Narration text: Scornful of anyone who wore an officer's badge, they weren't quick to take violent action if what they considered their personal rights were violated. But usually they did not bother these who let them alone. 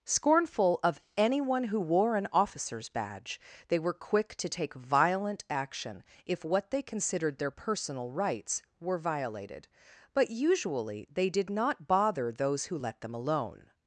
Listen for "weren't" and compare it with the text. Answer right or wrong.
wrong